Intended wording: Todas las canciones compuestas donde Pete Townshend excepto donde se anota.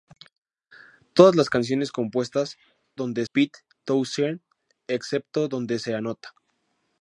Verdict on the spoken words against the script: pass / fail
pass